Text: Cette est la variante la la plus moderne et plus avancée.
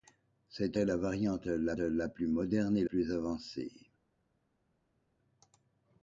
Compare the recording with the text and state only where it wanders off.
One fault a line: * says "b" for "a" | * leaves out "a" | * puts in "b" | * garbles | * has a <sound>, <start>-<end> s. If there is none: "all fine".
all fine